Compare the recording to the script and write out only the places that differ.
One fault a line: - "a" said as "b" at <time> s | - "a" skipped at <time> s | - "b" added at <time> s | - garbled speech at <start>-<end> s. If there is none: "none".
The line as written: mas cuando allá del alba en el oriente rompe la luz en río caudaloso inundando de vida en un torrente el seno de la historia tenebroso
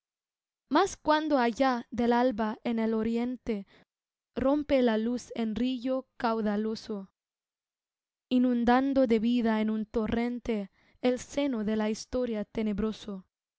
none